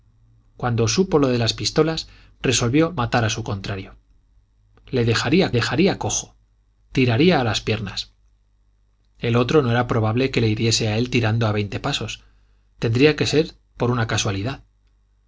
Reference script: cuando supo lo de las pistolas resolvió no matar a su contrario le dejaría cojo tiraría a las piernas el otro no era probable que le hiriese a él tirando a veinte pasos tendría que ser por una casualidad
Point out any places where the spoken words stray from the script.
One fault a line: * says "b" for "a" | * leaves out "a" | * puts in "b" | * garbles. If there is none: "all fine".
* leaves out "no"
* puts in "dejaría"